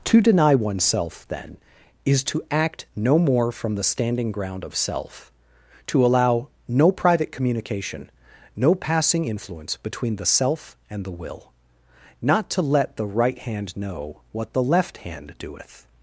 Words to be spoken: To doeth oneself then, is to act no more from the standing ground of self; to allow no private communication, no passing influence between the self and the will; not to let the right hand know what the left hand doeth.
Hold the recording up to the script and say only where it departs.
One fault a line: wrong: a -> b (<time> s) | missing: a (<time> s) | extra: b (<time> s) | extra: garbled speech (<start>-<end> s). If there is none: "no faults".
wrong: doeth -> deny (0.2 s)